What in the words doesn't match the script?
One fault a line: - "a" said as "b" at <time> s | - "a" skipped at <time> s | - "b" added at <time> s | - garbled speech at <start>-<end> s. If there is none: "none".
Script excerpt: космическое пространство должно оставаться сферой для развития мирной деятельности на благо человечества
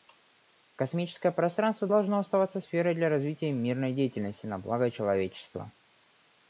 none